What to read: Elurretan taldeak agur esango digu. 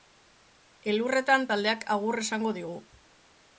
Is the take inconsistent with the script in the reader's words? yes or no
no